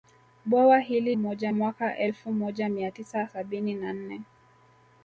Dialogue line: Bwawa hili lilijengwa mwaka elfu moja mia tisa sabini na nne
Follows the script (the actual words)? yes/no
no